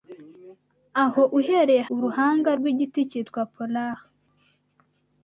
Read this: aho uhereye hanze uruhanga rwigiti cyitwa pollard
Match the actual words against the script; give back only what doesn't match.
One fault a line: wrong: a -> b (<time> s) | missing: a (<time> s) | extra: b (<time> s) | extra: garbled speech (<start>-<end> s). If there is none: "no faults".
missing: hanze (1.8 s)